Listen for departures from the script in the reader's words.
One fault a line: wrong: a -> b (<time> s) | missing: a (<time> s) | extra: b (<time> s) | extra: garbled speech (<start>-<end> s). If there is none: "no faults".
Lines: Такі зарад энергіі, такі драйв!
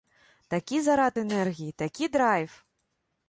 no faults